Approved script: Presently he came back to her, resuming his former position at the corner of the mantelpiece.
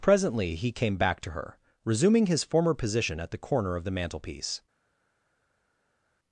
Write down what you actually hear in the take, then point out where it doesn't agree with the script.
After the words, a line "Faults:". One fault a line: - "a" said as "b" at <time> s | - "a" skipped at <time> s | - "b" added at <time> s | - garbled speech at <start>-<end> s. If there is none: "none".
Presently he came back to her, resuming his former position at the corner of the mantelpiece.
Faults:
none